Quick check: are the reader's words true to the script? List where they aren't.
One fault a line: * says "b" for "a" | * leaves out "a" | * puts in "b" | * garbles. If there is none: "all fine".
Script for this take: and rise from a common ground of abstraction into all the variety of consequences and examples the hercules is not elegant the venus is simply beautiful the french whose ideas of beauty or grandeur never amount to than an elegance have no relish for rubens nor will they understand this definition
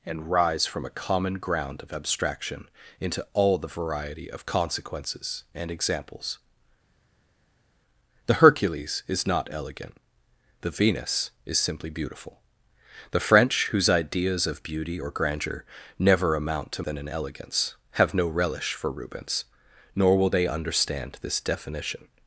all fine